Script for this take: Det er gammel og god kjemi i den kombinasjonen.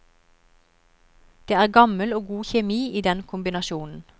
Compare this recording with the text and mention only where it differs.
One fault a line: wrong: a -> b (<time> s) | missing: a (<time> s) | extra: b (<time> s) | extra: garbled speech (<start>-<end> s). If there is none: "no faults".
no faults